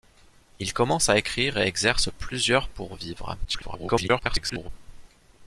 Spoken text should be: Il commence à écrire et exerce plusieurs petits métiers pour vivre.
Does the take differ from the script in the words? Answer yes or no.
yes